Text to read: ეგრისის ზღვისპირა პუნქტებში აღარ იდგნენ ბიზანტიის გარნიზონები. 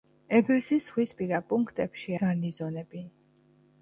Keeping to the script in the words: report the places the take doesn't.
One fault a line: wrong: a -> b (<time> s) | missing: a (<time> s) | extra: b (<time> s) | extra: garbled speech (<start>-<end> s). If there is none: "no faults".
missing: აღარ იდგნენ ბიზანტიის (2.2 s)